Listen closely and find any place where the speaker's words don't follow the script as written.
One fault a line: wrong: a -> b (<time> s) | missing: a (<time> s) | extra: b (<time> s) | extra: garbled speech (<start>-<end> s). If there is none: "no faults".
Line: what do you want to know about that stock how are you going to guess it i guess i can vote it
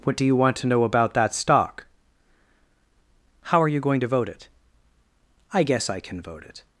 wrong: guess -> vote (4.1 s)